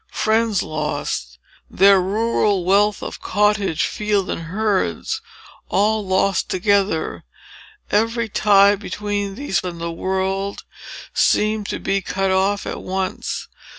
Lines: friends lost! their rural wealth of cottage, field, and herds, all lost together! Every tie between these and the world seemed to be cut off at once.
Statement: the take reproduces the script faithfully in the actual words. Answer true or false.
true